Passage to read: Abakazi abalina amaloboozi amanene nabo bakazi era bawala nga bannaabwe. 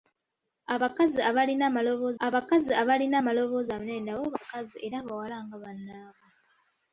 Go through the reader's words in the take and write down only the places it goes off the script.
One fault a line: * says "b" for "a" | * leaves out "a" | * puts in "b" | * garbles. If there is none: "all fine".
* puts in "abakazi abalina amaloboozi"